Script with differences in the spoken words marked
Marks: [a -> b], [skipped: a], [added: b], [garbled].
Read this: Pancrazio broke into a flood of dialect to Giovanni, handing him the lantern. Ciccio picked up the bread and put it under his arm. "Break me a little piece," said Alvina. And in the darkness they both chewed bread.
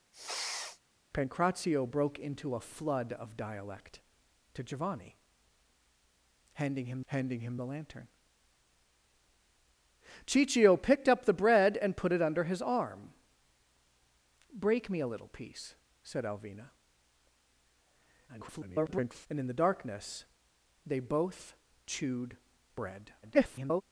Pancrazio broke into a flood of dialect to Giovanni, handing him [added: handing him] the lantern. Ciccio picked up the bread and put it under his arm. "Break me a little piece," said Alvina. [garbled] And in the darkness they both chewed bread. [garbled]